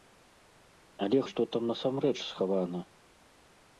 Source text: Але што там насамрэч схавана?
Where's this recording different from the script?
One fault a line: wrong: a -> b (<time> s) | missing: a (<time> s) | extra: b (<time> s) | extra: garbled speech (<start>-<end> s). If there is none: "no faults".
no faults